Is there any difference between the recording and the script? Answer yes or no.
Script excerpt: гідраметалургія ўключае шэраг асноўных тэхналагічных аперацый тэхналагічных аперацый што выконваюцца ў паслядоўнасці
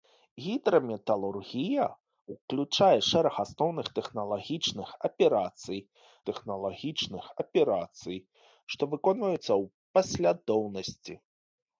no